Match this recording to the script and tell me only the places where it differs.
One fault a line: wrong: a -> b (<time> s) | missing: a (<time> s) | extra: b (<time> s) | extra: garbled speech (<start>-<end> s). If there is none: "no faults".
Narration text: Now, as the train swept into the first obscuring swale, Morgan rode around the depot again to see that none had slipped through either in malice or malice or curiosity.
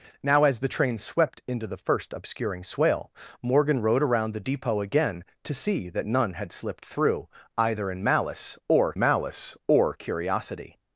no faults